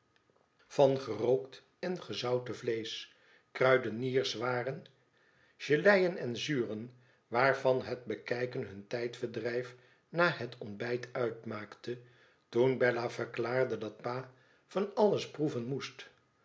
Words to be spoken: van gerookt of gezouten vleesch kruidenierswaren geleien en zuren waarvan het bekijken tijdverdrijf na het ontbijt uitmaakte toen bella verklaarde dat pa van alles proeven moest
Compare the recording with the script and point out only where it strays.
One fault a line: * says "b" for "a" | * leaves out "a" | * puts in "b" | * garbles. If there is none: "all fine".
* says "en" for "of"
* puts in "hun"